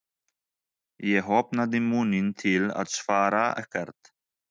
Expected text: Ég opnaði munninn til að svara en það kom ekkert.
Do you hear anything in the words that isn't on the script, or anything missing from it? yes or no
yes